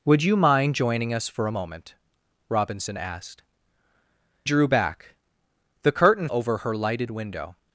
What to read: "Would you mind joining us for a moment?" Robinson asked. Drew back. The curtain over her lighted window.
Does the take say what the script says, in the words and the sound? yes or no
yes